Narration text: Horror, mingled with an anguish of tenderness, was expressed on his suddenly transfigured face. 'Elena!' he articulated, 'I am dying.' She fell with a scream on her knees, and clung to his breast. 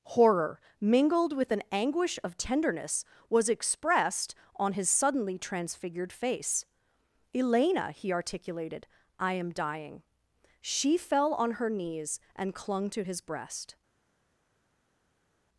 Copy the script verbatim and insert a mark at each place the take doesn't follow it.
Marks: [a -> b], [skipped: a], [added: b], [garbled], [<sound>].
Horror, mingled with an anguish of tenderness, was expressed on his suddenly transfigured face. 'Elena!' he articulated, 'I am dying.' She fell [skipped: with a scream] on her knees, and clung to his breast.